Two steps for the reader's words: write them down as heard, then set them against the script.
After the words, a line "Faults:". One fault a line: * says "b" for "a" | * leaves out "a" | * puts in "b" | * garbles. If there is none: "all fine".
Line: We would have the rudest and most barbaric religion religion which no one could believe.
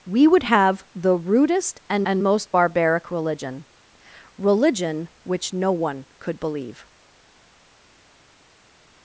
We would have the rudest and and most barbaric religion religion which no one could believe.
Faults:
* puts in "and"